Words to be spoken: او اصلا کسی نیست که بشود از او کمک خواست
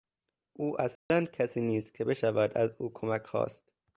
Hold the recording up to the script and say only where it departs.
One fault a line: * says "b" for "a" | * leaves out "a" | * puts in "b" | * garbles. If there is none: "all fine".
all fine